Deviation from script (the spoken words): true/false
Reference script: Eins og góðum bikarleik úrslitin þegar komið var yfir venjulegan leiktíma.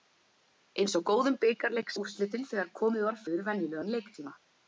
false